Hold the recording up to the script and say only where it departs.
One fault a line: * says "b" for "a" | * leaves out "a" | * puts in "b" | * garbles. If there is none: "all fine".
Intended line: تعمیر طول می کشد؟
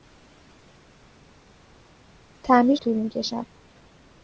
all fine